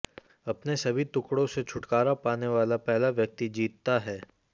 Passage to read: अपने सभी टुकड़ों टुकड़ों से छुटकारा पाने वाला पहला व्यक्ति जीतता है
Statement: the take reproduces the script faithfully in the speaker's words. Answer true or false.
false